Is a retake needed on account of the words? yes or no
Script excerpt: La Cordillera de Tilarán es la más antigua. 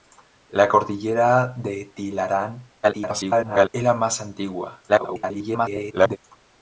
yes